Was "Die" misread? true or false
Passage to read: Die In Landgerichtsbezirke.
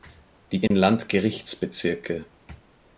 false